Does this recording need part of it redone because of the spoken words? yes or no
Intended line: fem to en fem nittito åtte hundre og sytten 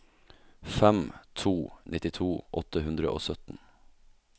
yes